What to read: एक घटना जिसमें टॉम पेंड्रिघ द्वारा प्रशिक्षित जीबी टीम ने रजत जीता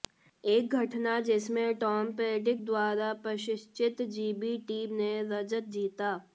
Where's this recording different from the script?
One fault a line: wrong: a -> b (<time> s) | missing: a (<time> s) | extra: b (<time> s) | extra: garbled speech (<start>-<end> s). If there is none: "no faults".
no faults